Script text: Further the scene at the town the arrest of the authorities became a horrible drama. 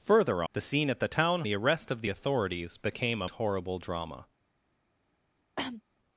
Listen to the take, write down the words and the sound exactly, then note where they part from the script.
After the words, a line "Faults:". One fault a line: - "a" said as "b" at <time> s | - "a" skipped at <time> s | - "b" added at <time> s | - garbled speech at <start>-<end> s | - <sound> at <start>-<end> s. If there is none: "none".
Further the scene at the town the arrest of the authorities became a horrible drama.
Faults:
- cough at 5.6-5.8 s